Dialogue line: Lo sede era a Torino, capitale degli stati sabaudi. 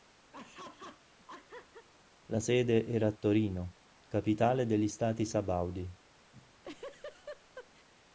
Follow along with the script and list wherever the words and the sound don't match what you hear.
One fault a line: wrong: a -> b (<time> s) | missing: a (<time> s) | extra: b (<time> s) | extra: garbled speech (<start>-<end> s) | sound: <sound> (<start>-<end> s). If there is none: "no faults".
sound: laugh (0.3-1.9 s)
wrong: Lo -> La (2.3 s)
sound: laugh (6.3-7.9 s)